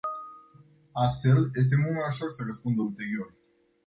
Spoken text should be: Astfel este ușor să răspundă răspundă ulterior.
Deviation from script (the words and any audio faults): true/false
true